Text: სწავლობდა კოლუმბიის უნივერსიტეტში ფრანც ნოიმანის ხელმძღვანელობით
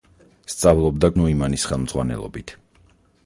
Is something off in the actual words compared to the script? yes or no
yes